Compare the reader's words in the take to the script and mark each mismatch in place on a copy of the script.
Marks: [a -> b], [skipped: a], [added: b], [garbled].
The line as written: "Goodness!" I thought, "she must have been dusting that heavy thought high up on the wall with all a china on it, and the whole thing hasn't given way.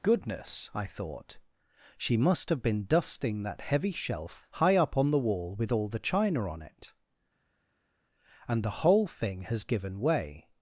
"Goodness!" I thought, "she must have been dusting that heavy [thought -> shelf] high up on the wall with all [a -> the] china on it, and the whole thing [hasn't -> has] given way.